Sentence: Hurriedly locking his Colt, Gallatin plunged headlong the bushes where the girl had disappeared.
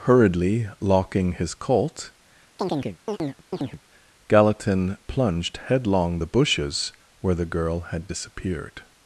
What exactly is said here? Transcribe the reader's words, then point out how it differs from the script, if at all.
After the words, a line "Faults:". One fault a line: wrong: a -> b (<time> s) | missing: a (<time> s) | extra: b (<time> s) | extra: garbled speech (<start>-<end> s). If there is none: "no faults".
Hurriedly locking his Colt, Gallatin plunged headlong the bushes where the girl had disappeared.
Faults:
no faults